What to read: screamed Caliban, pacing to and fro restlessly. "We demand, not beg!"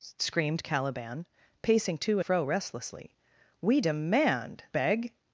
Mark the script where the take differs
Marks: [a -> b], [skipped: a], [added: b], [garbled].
screamed Caliban, pacing to [skipped: and] fro restlessly. "We demand, [skipped: not] beg!"